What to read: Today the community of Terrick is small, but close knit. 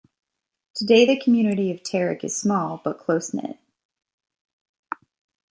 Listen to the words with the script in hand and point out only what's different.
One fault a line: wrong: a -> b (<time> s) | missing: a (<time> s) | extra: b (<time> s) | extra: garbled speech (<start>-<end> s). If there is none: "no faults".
no faults